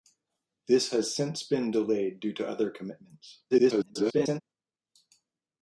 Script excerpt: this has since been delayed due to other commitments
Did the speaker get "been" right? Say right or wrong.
right